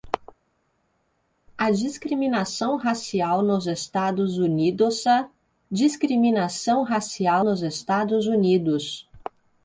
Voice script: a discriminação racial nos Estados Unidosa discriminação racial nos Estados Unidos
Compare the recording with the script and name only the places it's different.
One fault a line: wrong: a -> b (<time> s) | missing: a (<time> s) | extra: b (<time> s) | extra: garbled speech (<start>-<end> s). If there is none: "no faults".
no faults